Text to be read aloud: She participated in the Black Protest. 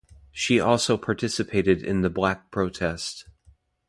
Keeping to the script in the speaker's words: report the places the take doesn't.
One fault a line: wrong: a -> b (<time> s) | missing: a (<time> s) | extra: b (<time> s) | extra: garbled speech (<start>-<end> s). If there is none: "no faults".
extra: also (0.6 s)